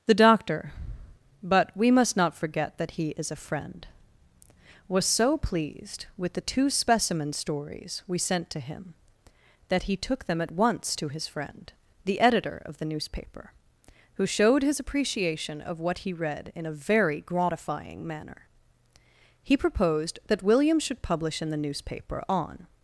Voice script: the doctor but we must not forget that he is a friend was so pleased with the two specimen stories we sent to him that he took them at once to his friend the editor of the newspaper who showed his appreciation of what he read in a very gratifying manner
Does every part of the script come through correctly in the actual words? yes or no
no